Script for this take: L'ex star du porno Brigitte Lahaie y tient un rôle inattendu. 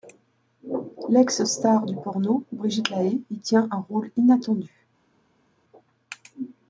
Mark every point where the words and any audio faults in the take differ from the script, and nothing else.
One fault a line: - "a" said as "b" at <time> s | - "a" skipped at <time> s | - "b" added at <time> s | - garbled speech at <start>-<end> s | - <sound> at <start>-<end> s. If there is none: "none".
none